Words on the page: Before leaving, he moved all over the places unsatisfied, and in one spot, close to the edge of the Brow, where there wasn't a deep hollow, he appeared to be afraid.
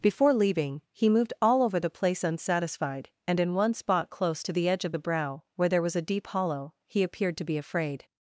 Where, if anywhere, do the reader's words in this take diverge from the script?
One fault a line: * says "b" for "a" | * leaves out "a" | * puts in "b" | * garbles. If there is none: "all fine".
* says "place" for "places"
* says "was" for "wasn't"